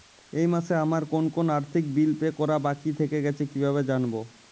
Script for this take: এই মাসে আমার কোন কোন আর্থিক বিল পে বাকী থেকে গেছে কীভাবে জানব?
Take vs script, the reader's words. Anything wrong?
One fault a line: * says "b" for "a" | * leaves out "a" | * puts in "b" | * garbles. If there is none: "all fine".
* puts in "করা"